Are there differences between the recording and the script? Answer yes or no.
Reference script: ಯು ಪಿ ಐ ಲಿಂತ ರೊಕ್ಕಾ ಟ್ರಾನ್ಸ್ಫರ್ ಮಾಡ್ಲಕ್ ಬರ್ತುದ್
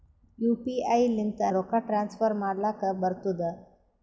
no